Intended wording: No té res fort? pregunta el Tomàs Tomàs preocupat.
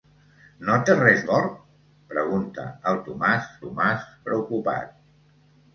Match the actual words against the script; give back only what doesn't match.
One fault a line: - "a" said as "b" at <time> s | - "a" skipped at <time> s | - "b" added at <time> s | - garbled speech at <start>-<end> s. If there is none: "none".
none